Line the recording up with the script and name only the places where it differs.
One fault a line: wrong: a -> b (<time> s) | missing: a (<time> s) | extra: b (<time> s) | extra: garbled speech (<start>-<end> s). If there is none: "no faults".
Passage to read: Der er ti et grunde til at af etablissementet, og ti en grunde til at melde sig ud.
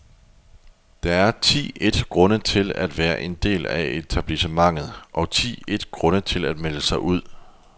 extra: være en del (3.0 s)
wrong: en -> et (5.7 s)